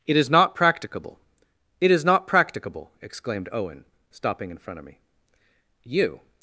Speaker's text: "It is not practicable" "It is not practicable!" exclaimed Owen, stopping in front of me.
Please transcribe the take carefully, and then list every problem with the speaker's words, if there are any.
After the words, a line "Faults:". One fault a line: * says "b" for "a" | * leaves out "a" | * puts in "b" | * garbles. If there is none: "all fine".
"It is not practicable" "It is not practicable!" exclaimed Owen, stopping in front of me. "You
Faults:
* puts in "You"